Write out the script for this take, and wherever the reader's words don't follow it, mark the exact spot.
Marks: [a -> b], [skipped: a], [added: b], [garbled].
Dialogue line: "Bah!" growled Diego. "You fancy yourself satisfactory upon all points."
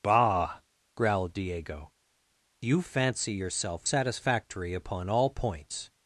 "Bah!" growled Diego. "You fancy yourself satisfactory upon all points."